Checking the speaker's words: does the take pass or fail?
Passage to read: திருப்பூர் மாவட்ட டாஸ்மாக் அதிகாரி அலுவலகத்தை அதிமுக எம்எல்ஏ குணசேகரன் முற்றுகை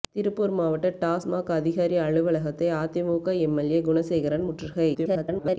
fail